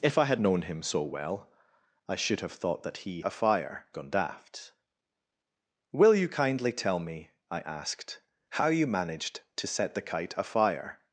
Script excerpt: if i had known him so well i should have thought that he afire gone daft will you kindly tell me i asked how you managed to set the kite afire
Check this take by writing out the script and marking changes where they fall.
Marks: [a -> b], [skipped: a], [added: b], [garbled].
if i had known him so well i should have thought that he afire gone daft will you kindly tell me i asked how you managed to set the kite afire